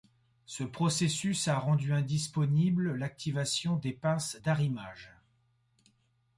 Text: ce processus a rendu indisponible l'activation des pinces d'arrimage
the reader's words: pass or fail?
pass